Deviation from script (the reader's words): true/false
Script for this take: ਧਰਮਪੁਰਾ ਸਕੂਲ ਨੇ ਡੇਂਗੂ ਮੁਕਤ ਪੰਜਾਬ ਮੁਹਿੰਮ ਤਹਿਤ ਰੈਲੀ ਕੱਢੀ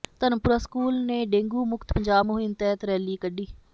false